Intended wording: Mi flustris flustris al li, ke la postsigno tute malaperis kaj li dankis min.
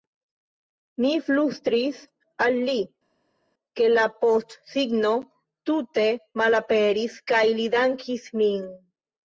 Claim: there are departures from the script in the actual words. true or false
true